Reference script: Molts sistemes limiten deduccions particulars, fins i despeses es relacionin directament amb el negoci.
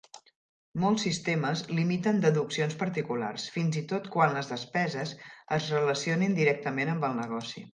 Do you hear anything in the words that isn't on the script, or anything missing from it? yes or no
yes